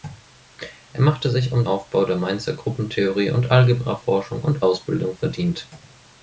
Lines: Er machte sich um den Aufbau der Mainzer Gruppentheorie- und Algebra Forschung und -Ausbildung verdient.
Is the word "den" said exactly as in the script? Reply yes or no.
no